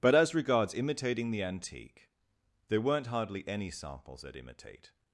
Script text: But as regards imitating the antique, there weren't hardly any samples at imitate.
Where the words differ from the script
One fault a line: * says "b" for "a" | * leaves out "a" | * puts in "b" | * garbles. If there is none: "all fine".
all fine